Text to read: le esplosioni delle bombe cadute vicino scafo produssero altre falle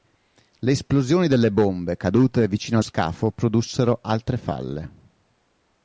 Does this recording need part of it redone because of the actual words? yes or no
no